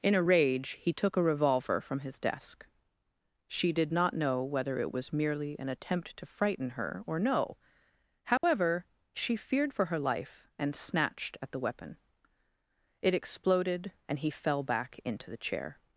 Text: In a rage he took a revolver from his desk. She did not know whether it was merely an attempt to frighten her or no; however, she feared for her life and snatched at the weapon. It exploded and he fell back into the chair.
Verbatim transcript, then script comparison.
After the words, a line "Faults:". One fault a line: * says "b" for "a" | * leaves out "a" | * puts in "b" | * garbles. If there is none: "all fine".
In a rage he took a revolver from his desk. She did not know whether it was merely an attempt to frighten her or no; however, she feared for her life and snatched at the weapon. It exploded and he fell back into the chair.
Faults:
all fine